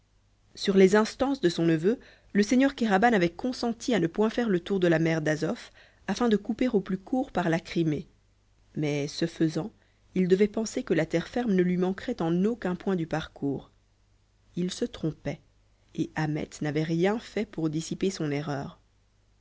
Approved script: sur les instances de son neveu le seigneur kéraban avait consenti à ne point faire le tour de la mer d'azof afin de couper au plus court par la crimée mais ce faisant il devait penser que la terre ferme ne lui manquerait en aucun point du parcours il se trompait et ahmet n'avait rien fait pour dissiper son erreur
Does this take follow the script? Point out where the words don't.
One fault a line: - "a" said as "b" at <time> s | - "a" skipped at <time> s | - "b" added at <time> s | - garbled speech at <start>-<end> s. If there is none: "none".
none